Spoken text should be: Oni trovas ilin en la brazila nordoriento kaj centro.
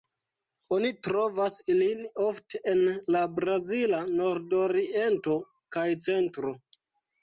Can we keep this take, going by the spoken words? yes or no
no